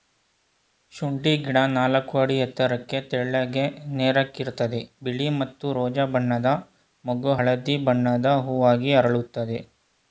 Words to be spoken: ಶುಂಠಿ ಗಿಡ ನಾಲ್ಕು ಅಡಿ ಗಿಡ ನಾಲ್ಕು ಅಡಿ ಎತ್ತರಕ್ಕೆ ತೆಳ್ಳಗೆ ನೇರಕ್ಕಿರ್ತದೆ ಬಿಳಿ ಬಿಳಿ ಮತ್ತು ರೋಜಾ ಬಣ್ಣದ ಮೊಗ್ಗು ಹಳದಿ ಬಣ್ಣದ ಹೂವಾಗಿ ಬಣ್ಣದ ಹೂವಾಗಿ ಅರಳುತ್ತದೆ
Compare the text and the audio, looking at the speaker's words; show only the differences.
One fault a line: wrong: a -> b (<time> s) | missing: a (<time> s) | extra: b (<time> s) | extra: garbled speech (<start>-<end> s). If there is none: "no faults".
missing: ಗಿಡ ನಾಲ್ಕು ಅಡಿ (2.4 s)
missing: ಬಿಳಿ (5.3 s)
missing: ಬಣ್ಣದ ಹೂವಾಗಿ (8.9 s)